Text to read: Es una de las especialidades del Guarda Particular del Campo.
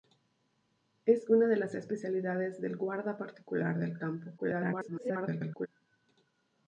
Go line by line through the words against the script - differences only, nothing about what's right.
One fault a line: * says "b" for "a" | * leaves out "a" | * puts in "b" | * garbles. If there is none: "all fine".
* garbles